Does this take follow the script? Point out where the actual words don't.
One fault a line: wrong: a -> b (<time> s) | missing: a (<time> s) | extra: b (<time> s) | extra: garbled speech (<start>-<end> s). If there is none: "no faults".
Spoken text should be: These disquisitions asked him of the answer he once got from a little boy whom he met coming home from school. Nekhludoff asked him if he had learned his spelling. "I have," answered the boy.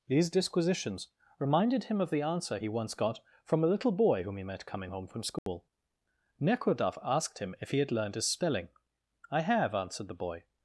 wrong: asked -> reminded (1.4 s)